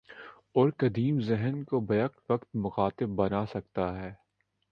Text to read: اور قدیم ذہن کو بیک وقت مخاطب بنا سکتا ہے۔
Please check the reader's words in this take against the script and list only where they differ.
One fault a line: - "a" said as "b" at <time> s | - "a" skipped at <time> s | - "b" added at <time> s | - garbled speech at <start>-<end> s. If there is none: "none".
none